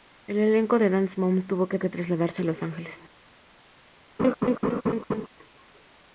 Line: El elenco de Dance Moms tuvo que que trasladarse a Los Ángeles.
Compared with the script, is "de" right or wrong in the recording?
right